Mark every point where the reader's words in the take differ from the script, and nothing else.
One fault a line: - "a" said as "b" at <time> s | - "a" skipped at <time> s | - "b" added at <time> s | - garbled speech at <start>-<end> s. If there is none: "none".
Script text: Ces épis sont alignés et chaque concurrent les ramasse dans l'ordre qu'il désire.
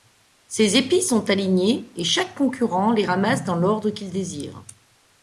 none